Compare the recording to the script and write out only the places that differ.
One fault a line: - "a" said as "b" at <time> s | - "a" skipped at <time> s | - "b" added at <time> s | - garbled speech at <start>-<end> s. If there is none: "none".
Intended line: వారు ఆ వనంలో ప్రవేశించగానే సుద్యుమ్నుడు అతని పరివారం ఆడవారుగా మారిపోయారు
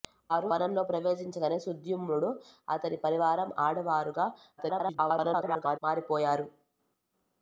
- "ఆ" skipped at 0.5 s
- garbled speech at 4.6-5.8 s